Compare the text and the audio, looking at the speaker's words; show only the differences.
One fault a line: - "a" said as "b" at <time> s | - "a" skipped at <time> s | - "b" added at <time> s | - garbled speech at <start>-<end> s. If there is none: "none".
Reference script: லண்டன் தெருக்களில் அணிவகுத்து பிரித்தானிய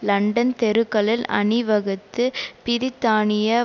none